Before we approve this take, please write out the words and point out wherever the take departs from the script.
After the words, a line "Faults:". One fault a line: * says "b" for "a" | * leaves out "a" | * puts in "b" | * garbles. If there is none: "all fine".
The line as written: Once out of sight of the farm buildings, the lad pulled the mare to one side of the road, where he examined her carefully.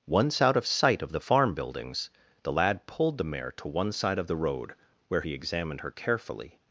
Once out of sight of the farm buildings, the lad pulled the mare to one side of the road, where he examined her carefully.
Faults:
all fine